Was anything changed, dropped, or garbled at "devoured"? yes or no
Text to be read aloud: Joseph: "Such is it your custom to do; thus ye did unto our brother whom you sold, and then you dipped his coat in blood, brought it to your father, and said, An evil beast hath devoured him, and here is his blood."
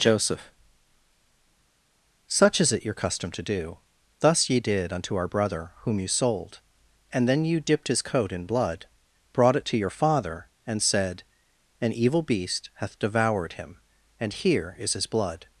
no